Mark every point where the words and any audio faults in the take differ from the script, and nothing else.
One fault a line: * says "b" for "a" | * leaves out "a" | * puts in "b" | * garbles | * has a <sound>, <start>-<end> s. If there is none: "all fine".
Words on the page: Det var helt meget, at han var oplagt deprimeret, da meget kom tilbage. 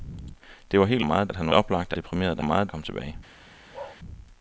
* has a bark, 3.7-4.0 s